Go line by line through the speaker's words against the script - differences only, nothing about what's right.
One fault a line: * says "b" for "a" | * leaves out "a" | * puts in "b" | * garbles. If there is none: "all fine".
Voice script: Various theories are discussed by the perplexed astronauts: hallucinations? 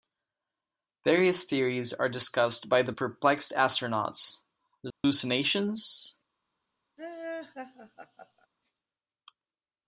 all fine